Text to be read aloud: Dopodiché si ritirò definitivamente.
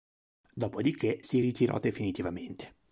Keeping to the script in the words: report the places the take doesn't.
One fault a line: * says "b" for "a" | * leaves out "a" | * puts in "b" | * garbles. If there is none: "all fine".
all fine